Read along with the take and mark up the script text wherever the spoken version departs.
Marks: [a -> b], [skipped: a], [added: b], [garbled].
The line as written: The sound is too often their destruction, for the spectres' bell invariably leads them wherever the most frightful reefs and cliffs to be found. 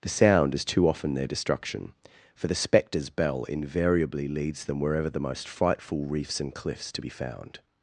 The sound is too often their destruction, for the spectres' bell invariably leads them wherever the most frightful reefs and cliffs to be found.